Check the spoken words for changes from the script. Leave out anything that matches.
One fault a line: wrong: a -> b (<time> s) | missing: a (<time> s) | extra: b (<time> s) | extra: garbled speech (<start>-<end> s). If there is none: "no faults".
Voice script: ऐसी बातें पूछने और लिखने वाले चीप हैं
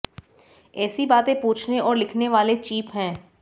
no faults